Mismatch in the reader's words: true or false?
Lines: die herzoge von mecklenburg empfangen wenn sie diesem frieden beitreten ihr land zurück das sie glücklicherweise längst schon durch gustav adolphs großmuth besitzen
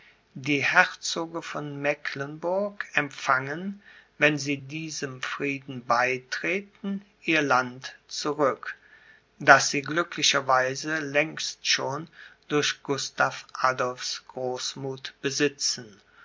false